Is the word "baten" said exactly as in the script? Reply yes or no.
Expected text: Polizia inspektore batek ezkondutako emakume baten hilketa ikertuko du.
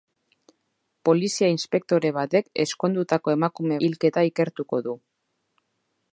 no